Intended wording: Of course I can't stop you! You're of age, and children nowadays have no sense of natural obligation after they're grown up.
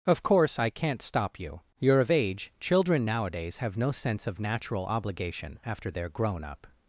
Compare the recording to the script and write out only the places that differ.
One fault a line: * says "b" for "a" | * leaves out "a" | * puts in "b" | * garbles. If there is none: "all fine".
* leaves out "and"